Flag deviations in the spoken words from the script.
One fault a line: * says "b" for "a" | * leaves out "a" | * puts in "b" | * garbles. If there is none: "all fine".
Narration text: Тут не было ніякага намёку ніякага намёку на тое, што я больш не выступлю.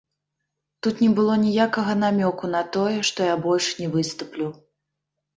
* leaves out "ніякага намёку"